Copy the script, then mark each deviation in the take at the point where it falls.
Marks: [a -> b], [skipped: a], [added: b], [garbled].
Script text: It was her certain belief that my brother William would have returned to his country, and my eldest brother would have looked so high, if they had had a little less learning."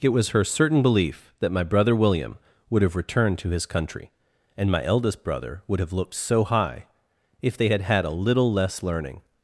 It was her certain belief that my brother William would have returned to his country, and my eldest brother would have looked so high, if they had had a little less learning."